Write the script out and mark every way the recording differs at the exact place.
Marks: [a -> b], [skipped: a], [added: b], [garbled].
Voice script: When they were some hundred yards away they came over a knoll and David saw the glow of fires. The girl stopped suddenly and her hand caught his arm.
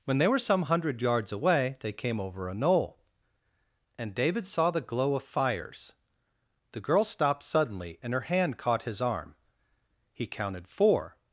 When they were some hundred yards away they came over a knoll and David saw the glow of fires. The girl stopped suddenly and her hand caught his arm. [added: He counted four]